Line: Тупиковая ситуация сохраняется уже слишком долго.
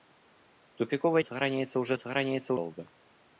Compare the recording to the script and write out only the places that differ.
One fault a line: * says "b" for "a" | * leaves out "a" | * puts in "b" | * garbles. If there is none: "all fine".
* leaves out "ситуация"
* says "сохраняется" for "слишком"